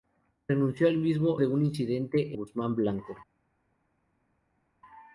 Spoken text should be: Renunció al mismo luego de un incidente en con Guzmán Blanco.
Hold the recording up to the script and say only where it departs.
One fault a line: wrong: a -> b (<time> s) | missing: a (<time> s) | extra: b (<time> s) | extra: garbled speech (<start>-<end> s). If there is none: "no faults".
missing: luego (1.4 s)
missing: en con (2.4 s)